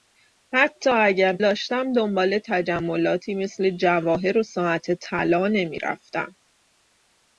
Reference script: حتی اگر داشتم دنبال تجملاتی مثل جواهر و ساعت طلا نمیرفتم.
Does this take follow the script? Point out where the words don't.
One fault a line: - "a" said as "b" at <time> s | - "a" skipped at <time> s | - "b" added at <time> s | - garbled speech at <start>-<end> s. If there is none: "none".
none